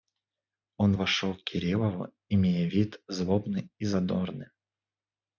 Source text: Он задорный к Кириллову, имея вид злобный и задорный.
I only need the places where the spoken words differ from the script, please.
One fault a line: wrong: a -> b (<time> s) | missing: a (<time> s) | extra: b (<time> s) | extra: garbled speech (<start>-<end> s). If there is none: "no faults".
wrong: задорный -> вошел (0.9 s)